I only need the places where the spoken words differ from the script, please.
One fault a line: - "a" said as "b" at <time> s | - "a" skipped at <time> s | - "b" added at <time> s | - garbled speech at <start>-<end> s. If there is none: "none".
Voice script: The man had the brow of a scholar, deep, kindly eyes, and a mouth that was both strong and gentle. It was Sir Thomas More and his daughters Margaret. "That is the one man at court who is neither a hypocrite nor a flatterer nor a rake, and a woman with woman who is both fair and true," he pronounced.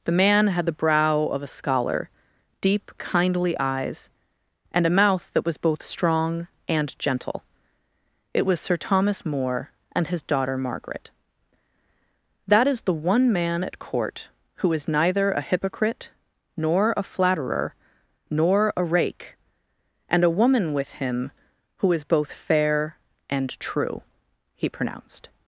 - "daughters" said as "daughter" at 10.2 s
- "woman" said as "him" at 20.9 s